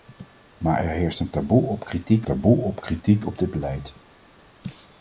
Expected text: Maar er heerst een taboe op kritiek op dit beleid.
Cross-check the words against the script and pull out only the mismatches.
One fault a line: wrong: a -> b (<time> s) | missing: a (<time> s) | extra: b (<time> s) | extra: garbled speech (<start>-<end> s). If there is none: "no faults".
extra: taboe op kritiek (2.2 s)